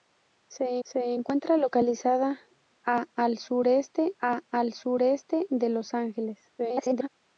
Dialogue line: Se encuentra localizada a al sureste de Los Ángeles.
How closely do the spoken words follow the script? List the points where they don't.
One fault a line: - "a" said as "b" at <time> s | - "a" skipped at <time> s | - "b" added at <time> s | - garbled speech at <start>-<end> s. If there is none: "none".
- "se" added at 0.8 s
- "a al sureste" added at 4.2 s
- garbled speech at 6.6-7.1 s